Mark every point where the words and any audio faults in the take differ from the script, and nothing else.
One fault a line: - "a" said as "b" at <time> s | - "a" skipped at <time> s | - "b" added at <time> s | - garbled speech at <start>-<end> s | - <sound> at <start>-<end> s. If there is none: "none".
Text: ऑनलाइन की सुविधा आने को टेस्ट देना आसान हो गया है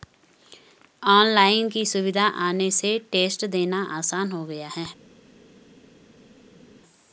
- "को" said as "से" at 2.7 s